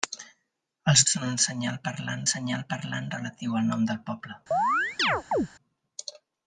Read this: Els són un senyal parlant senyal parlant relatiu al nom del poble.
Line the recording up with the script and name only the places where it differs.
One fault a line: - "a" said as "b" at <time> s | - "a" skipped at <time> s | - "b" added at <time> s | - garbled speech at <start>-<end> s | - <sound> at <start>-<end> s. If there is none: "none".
- chirp at 4.5-5.5 s